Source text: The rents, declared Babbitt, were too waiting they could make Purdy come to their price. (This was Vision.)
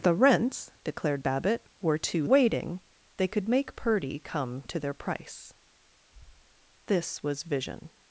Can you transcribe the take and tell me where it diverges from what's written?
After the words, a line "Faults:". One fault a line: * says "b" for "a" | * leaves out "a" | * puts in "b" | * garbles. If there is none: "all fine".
The rents, declared Babbitt, were too waiting they could make Purdy come to their price. (This was Vision.)
Faults:
all fine